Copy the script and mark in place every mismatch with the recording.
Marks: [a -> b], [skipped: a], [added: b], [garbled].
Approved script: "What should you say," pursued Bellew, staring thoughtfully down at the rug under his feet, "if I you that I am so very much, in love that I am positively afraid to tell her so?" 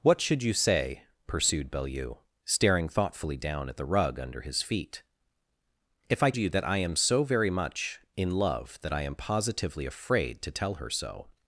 "What should you say," pursued Bellew, staring thoughtfully down at the rug under his feet, "if I you that I am so very much, in love that I am positively afraid to tell her so?"